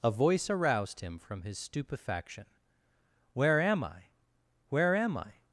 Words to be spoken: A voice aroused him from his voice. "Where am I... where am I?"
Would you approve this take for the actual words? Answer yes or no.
no